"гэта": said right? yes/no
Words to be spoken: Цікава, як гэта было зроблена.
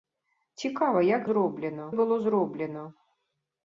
no